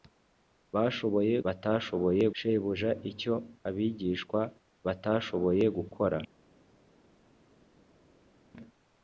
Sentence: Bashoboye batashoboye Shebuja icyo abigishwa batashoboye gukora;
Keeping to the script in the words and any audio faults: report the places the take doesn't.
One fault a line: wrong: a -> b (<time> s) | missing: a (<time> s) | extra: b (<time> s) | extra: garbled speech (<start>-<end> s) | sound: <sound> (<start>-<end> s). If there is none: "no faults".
no faults